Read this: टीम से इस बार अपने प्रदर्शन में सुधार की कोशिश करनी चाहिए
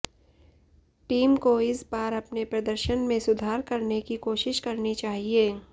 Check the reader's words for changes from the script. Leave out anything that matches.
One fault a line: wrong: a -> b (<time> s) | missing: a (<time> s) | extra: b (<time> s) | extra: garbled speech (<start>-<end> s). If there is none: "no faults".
wrong: से -> को (1.4 s)
extra: करने (3.7 s)